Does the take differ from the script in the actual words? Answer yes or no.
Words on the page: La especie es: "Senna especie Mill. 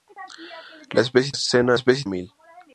no